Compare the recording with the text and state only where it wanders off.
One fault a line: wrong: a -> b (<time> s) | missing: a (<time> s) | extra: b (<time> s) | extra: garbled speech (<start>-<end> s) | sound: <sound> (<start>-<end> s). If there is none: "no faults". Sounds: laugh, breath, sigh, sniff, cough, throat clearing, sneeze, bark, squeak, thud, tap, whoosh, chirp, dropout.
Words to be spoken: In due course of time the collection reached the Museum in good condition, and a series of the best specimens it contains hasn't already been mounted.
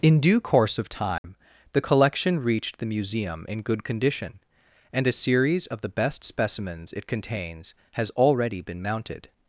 sound: dropout (1.2-1.2 s)
wrong: hasn't -> has (7.9 s)